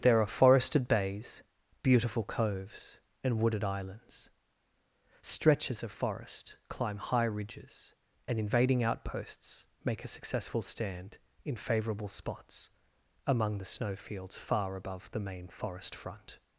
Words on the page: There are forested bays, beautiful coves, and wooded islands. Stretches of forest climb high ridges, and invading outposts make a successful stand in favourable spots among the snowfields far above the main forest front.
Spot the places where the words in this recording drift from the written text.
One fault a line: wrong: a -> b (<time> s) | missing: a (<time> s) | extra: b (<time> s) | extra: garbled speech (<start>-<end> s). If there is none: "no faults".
no faults